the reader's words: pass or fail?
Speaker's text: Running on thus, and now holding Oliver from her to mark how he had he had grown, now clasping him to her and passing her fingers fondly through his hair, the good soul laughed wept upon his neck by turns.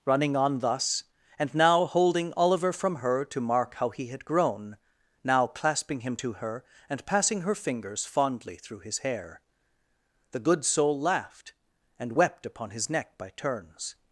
fail